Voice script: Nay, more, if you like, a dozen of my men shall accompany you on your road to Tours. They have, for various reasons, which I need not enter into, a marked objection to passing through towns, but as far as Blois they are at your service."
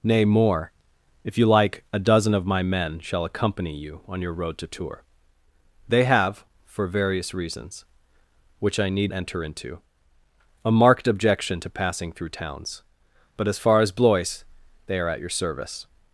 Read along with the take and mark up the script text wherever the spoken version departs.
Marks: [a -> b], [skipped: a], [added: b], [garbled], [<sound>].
Nay, more, if you like, a dozen of my men shall accompany you on your road to Tours. They have, for various reasons, which I need [skipped: not] enter into, a marked objection to passing through towns, but as far as Blois they are at your service."